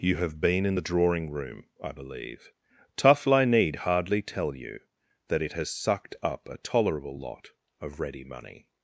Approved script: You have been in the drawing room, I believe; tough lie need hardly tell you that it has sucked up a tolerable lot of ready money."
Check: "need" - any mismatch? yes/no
no